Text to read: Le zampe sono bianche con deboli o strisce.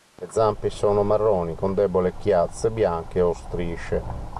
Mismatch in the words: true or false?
true